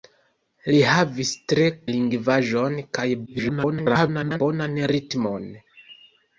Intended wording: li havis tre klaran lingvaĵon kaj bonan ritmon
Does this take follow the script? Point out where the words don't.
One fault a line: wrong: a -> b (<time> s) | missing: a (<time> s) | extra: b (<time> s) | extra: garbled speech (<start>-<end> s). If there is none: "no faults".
missing: klaran (1.7 s)
extra: garbled speech (3.3-4.4 s)